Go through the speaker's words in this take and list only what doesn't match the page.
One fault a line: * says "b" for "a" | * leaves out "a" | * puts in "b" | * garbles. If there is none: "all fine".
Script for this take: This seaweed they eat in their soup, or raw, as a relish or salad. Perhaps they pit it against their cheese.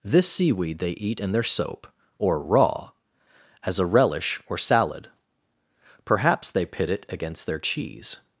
* says "soap" for "soup"